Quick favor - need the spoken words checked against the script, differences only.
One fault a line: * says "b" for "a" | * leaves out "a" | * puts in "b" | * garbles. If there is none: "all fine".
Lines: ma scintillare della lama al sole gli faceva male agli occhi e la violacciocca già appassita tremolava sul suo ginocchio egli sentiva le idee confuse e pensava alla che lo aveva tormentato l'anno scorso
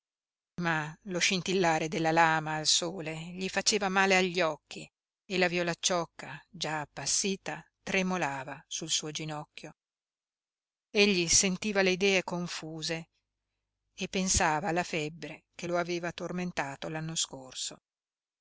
* puts in "lo"
* puts in "febbre"